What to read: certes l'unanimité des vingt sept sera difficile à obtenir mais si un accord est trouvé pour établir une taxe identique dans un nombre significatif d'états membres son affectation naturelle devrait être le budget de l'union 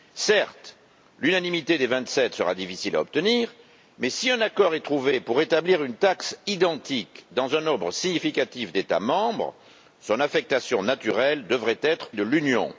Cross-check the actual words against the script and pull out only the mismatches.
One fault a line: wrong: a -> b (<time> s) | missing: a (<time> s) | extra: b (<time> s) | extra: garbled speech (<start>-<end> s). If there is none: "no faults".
missing: le budget (12.1 s)